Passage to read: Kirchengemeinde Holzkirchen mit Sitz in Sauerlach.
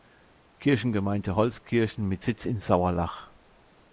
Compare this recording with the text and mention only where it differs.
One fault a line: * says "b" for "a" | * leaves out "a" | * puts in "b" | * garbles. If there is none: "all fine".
all fine